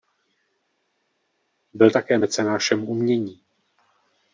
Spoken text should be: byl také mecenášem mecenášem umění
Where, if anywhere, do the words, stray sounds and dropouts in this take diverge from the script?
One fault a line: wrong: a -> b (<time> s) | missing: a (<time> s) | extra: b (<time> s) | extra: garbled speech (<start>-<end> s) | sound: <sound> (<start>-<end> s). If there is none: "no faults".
missing: mecenášem (2.9 s)